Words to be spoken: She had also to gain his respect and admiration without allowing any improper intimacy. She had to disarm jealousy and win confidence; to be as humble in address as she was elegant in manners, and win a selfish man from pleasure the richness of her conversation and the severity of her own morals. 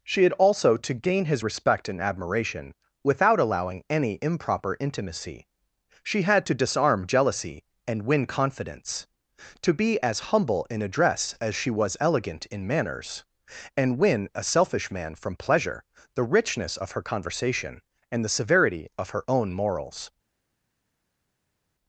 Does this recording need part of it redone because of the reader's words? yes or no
no